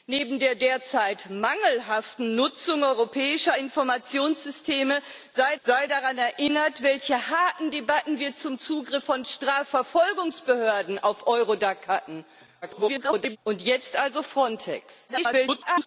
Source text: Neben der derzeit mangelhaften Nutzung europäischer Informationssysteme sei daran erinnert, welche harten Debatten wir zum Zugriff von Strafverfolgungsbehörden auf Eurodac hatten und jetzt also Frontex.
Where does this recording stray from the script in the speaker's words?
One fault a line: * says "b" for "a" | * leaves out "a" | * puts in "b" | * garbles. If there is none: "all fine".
* puts in "sei"
* garbles
* garbles